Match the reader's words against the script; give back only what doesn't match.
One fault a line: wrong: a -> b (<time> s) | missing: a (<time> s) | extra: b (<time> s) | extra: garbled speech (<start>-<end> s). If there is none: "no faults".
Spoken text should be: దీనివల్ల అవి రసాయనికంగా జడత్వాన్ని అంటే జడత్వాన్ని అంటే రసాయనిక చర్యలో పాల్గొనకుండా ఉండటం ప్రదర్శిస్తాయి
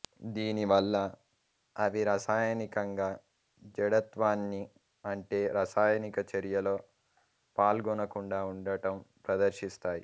missing: జడత్వాన్ని అంటే (5.4 s)